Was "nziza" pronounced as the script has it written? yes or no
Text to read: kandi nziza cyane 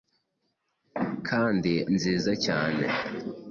yes